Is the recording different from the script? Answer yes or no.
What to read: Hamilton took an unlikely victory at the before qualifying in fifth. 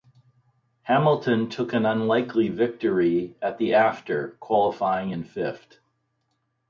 yes